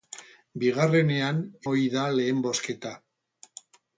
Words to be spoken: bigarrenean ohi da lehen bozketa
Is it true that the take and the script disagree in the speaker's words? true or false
false